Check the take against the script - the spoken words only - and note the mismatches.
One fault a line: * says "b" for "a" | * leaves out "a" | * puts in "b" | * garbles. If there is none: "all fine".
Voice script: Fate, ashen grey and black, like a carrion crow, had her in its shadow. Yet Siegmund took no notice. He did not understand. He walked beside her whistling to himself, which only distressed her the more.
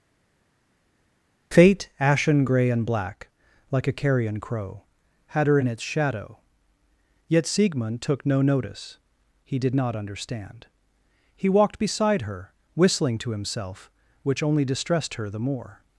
all fine